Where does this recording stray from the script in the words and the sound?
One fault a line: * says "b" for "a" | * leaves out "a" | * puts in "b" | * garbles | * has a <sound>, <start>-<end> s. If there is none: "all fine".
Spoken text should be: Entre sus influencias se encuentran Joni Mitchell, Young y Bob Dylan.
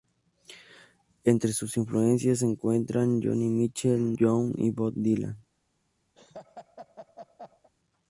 * has a laugh, 6.2-7.7 s